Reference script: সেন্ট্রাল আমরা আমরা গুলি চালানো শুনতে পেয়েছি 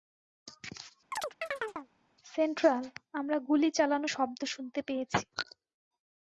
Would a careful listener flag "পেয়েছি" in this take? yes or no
no